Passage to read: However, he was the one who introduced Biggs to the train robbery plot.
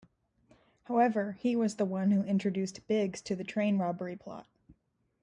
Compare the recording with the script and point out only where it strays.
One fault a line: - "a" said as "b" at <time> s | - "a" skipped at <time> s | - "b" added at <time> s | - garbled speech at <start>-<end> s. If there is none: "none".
none